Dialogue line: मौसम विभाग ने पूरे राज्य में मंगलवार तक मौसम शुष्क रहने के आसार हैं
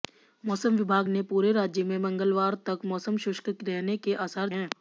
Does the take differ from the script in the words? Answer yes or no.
no